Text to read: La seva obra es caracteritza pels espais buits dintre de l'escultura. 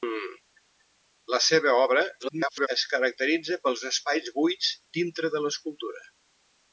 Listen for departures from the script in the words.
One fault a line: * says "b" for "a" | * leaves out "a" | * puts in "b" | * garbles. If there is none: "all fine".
* garbles